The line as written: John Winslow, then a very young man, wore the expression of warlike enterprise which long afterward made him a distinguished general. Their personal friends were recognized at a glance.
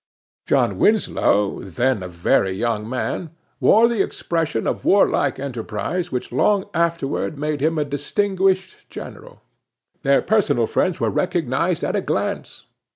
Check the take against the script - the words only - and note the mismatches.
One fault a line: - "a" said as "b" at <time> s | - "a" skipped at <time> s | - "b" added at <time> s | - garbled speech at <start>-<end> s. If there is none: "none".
none